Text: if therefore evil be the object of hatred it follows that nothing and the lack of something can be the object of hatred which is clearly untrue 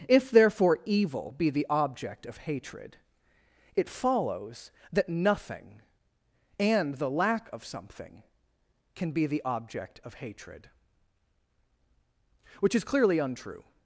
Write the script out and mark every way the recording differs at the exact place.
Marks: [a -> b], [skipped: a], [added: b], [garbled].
if therefore evil be the object of hatred it follows that nothing and the lack of something can be the object of hatred which is clearly untrue